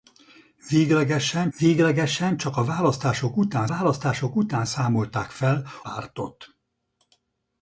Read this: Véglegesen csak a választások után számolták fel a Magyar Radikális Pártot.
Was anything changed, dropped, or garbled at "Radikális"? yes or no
yes